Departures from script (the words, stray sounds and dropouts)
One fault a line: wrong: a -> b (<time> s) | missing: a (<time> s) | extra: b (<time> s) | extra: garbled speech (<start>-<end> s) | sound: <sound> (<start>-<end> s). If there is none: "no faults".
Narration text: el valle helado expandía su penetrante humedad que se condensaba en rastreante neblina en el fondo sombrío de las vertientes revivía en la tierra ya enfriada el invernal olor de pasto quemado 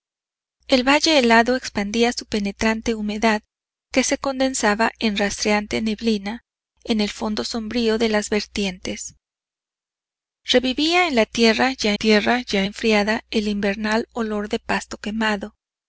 extra: tierra ya (11.9 s)